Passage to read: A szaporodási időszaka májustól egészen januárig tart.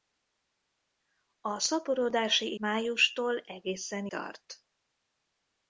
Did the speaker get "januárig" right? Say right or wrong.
wrong